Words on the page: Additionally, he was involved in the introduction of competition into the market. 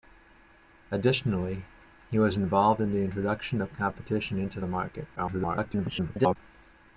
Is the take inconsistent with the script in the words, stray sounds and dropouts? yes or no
yes